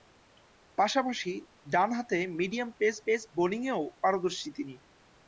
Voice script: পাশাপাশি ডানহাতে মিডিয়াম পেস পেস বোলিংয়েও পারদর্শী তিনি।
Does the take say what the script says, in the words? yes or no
yes